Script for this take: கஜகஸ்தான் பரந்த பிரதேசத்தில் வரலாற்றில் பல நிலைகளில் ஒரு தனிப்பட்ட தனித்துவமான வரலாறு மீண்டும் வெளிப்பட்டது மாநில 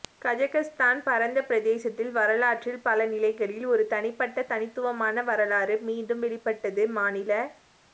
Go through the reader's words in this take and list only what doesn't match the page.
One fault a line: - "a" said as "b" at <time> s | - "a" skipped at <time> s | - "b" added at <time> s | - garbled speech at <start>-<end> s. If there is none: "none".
none